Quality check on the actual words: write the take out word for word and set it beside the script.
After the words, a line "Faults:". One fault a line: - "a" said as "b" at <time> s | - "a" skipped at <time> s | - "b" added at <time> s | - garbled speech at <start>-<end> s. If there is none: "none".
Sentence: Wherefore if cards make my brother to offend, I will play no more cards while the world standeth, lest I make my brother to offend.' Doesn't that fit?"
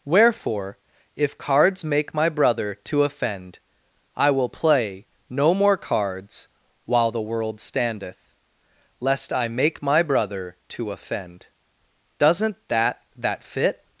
Wherefore if cards make my brother to offend, I will play no more cards while the world standeth, lest I make my brother to offend.' Doesn't that that fit?"
Faults:
- "that" added at 13.2 s